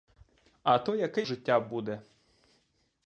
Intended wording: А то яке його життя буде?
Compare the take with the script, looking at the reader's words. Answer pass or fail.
fail